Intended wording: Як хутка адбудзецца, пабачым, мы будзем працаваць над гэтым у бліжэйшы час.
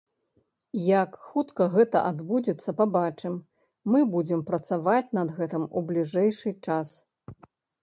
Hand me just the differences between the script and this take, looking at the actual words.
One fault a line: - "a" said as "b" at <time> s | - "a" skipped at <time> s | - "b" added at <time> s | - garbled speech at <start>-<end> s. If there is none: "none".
- "гэта" added at 1.8 s